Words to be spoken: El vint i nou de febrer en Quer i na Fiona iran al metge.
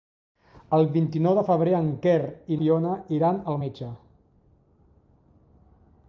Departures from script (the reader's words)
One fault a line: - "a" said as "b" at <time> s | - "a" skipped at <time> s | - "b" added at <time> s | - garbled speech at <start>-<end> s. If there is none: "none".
- "na" skipped at 2.6 s